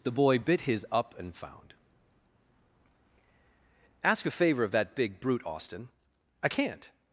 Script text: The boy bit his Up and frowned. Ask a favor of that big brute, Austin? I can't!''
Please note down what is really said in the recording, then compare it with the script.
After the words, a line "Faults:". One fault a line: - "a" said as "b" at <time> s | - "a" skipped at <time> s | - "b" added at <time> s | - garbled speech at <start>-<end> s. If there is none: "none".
The boy bit his Up and found. Ask a favor of that big brute, Austin? I can't!''
Faults:
- "frowned" said as "found" at 1.4 s